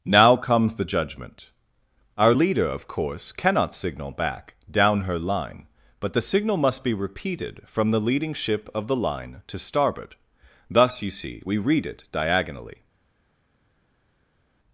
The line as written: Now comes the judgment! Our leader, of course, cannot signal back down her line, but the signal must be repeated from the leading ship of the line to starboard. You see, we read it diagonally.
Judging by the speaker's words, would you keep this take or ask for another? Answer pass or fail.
fail